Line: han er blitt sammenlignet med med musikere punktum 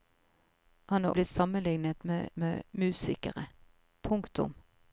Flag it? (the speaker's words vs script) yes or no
no